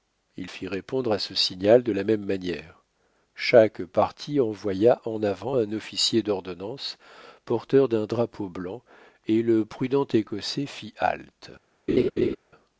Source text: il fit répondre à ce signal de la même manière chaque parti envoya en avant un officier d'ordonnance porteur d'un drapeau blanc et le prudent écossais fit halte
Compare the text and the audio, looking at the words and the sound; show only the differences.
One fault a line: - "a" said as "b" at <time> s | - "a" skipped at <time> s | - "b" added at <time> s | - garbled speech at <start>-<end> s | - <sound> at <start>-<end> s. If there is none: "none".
- laugh at 11.9-12.4 s